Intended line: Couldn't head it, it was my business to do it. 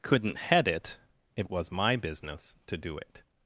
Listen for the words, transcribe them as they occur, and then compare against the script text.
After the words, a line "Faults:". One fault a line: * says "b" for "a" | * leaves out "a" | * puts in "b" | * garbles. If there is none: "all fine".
Couldn't head it, it was my business to do it.
Faults:
all fine